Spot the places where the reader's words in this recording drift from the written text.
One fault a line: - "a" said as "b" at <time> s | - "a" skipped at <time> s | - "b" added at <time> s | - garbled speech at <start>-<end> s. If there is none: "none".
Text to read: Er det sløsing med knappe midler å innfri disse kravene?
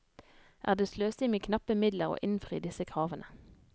none